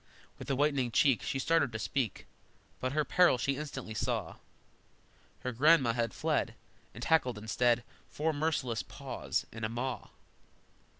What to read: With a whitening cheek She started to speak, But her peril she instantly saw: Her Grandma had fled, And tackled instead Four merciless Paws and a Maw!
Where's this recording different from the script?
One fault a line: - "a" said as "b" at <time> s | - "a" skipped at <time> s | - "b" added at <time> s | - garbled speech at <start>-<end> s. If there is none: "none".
none